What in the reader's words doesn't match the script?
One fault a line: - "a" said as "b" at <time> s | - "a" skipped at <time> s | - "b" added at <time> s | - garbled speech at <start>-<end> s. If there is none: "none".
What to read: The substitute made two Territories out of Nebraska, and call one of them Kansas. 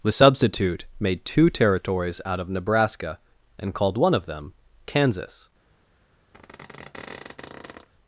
- "call" said as "called" at 3.7 s